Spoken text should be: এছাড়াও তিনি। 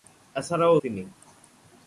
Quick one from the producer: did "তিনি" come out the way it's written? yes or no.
yes